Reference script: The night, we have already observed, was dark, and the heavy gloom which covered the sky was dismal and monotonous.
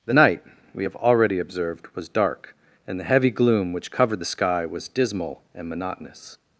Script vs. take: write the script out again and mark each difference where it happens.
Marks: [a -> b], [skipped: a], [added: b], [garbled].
The night, we have already observed, was dark, and the heavy gloom which covered the sky was dismal and monotonous.